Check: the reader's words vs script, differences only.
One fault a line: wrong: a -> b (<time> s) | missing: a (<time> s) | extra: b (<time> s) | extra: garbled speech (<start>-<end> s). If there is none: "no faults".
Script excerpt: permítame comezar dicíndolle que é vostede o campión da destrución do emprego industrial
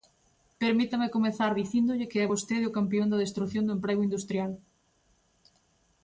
no faults